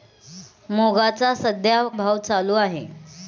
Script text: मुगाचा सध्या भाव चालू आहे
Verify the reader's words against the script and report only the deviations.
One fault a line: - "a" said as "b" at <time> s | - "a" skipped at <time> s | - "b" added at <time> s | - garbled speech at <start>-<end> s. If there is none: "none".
none